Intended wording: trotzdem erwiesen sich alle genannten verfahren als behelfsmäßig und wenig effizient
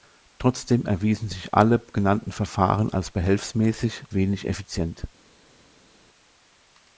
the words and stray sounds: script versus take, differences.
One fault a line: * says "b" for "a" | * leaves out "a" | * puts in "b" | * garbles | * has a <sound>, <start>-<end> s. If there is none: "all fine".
* leaves out "und"